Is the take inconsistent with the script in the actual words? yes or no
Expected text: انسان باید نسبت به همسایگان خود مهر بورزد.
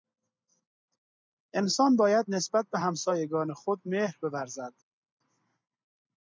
no